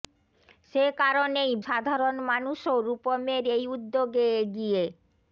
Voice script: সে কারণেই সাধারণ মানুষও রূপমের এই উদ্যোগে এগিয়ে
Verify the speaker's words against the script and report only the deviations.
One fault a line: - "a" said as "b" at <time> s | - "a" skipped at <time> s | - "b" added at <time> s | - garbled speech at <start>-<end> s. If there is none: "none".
none